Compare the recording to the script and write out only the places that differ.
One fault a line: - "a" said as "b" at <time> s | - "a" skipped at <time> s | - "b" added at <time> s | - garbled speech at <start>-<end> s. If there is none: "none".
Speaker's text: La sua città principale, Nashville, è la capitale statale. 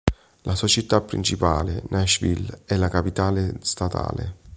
none